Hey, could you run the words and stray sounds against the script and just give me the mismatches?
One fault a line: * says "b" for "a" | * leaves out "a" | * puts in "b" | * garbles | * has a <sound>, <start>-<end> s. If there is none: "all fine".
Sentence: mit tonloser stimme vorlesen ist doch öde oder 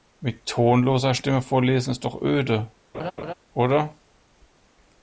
* has a laugh, 2.9-3.3 s